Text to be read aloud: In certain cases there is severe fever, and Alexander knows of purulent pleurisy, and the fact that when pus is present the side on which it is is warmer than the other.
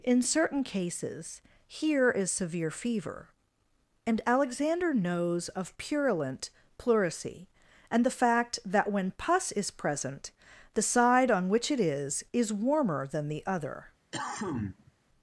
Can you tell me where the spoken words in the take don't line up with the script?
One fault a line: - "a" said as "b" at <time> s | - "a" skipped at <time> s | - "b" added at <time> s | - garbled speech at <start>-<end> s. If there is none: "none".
- "there" said as "here" at 1.7 s